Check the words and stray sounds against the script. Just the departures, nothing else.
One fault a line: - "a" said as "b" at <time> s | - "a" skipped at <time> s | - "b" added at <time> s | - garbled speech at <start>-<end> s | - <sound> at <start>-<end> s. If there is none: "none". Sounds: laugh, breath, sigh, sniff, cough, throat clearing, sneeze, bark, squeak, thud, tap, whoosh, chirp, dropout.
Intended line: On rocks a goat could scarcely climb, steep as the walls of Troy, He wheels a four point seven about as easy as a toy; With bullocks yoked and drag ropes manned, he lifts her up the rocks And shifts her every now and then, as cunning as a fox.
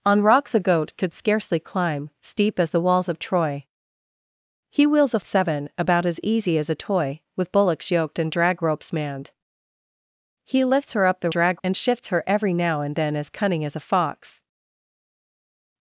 - "four point" skipped at 5.2 s
- "rocks" said as "drag" at 11.3 s